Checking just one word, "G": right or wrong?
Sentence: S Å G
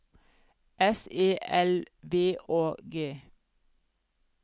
right